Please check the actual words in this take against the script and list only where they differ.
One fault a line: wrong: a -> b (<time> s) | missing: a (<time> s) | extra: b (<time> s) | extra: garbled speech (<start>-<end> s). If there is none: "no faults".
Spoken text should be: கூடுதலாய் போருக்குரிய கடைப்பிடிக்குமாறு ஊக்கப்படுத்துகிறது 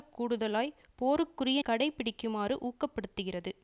no faults